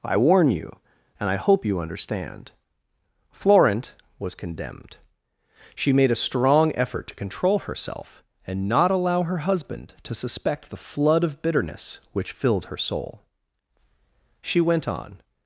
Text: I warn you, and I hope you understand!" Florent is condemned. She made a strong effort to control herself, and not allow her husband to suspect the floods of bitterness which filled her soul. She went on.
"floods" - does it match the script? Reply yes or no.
no